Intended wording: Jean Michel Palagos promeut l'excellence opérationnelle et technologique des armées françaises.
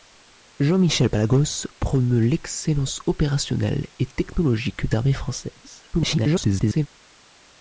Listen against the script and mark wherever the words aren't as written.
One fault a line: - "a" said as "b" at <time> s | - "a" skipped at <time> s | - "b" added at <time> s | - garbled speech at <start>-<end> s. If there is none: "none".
- "des" skipped at 4.9 s
- garbled speech at 5.9-6.9 s